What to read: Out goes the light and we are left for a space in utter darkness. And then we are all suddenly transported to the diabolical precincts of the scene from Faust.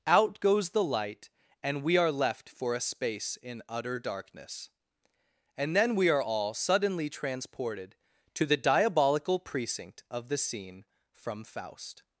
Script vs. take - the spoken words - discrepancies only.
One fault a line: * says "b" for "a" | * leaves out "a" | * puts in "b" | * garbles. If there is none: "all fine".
* says "precinct" for "precincts"